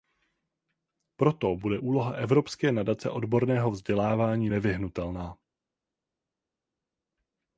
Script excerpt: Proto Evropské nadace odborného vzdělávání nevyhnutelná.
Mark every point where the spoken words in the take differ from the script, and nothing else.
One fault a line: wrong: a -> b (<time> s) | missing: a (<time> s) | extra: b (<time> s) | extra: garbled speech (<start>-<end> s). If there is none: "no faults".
extra: bude úloha (1.6 s)